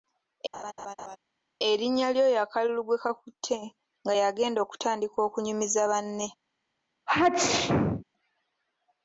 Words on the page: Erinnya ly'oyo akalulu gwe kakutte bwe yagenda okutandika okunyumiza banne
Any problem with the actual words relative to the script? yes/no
yes